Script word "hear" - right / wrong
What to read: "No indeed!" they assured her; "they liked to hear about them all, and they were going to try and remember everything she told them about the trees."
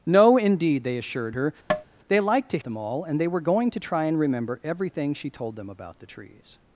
wrong